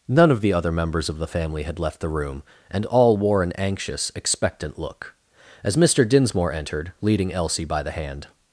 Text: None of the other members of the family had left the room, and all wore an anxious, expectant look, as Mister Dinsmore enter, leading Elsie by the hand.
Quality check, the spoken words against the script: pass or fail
fail